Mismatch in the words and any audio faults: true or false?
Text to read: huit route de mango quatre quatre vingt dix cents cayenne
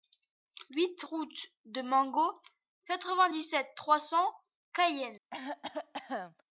true